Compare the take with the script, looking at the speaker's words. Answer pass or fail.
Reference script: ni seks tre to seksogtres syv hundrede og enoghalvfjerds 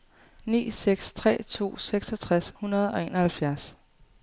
fail